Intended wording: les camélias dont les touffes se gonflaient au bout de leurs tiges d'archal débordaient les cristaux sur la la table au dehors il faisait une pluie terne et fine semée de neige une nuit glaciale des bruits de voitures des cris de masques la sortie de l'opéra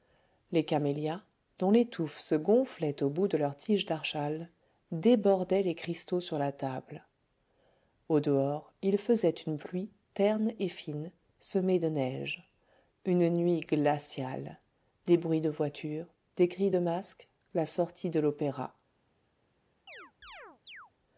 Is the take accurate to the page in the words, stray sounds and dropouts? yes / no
no